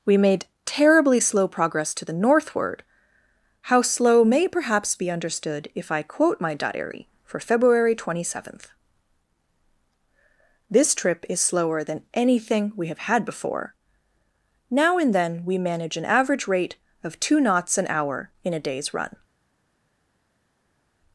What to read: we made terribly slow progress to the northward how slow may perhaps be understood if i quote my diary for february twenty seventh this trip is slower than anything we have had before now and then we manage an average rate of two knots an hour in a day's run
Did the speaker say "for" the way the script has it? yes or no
yes